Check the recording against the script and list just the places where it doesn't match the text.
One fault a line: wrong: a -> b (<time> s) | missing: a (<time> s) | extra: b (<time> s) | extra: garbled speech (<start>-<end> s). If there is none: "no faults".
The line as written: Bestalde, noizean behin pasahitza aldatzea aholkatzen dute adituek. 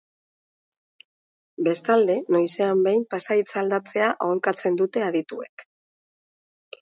no faults